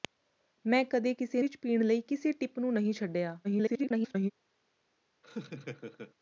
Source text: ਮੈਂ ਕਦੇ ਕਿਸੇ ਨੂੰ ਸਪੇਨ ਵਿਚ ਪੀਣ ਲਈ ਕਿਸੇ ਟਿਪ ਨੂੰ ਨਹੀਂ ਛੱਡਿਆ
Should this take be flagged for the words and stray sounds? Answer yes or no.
yes